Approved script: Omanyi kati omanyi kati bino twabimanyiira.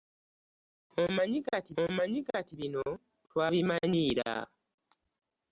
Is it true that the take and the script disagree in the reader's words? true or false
false